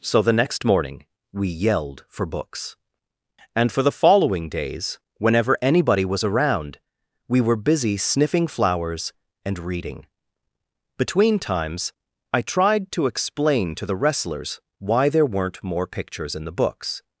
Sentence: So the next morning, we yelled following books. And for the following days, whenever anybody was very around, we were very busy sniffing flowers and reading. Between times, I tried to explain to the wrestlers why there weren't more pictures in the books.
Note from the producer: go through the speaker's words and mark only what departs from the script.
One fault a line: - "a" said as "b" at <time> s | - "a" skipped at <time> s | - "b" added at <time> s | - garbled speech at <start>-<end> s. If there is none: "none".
- "following" said as "for" at 2.1 s
- "very" skipped at 6.2 s
- "very" skipped at 7.7 s